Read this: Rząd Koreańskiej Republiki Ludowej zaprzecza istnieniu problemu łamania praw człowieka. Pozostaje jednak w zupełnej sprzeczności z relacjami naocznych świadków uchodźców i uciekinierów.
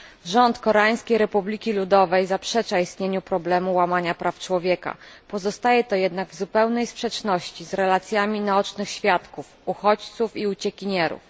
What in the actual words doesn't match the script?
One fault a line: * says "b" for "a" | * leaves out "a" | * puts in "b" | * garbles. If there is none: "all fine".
* puts in "to"